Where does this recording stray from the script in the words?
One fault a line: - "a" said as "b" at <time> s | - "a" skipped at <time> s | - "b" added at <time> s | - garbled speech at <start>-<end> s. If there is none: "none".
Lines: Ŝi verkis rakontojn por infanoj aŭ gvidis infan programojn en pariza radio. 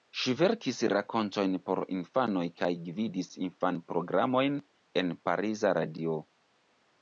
- "aŭ" said as "kaj" at 2.6 s